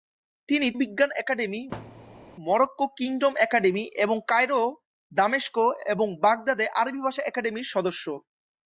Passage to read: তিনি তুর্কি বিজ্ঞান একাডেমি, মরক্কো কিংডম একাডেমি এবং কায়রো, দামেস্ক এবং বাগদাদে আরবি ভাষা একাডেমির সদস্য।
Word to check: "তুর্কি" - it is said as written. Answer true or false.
false